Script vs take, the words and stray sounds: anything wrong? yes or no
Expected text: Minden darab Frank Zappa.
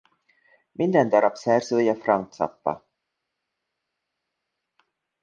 yes